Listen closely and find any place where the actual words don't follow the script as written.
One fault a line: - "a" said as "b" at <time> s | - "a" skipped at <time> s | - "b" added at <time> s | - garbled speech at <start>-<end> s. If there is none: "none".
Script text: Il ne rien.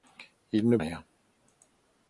none